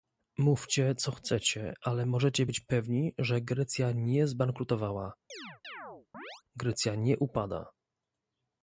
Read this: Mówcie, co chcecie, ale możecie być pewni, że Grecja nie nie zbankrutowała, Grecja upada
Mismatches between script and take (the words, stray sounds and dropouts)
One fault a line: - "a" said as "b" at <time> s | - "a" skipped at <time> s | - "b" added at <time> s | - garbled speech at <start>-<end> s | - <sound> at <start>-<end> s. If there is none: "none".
- "nie" skipped at 4.3 s
- chirp at 5.3-6.4 s
- "nie" added at 7.0 s